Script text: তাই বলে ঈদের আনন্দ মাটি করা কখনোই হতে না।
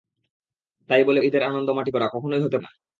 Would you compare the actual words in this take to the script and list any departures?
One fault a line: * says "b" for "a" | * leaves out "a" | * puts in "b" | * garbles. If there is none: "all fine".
all fine